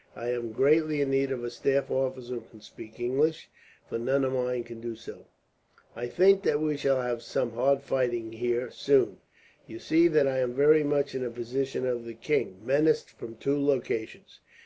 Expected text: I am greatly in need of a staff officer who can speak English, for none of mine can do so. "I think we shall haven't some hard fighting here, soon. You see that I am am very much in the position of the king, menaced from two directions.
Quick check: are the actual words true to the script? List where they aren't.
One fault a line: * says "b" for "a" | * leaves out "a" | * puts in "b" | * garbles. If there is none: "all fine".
* puts in "that"
* says "have" for "haven't"
* leaves out "am"